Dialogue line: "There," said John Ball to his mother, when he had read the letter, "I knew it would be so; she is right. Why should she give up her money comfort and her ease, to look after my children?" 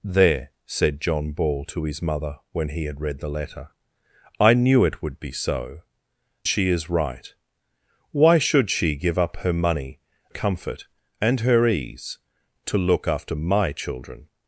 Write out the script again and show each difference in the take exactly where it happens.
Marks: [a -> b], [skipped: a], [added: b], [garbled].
"There," said John Ball to his mother, when he had read the letter, "I knew it would be so; she is right. Why should she give up her money comfort and her ease, to look after my children?"